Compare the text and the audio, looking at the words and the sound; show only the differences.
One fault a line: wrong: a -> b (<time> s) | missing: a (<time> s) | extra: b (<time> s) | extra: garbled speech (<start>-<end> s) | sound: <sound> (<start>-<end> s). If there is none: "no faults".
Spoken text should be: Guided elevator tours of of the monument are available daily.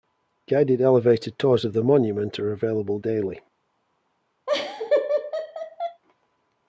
missing: of (1.8 s)
sound: laugh (4.5-6.0 s)